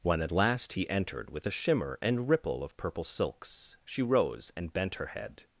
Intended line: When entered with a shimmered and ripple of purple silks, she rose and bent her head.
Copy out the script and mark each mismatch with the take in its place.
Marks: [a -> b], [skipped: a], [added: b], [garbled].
When [added: at last he] entered with a [shimmered -> shimmer] and ripple of purple silks, she rose and bent her head.